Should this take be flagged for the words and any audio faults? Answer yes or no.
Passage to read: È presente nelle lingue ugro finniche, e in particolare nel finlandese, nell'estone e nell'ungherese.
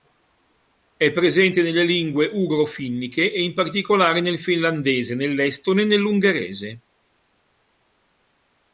no